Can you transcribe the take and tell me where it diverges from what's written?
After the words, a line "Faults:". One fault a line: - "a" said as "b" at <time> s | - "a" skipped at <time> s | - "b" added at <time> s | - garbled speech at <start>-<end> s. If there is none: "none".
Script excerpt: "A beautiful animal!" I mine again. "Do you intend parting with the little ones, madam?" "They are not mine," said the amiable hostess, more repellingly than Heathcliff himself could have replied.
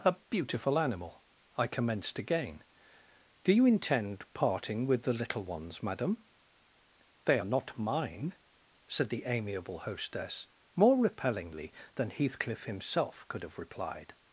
"A beautiful animal!" I commenced again. "Do you intend parting with the little ones, madam?" "They are not mine," said the amiable hostess, more repellingly than Heathcliff himself could have replied.
Faults:
- "mine" said as "commenced" at 1.7 s